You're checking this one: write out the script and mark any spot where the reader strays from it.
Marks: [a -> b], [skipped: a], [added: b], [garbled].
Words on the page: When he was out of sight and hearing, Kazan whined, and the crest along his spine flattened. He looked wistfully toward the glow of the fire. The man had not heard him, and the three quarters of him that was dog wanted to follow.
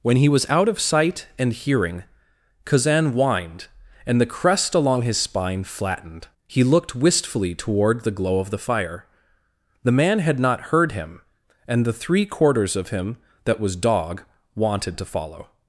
When he was out of sight and hearing, Kazan whined, and the crest along his spine flattened. He looked wistfully toward the glow of the fire. The man had not heard him, and the three quarters of him that was dog wanted to follow.